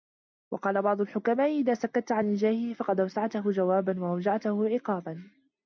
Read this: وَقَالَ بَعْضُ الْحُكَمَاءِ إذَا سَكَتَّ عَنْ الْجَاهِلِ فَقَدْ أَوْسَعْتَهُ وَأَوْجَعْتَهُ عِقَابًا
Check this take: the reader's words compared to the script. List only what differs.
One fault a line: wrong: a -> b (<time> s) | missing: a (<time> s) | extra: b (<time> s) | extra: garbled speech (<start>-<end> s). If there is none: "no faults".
extra: جَوَابًا (3.5 s)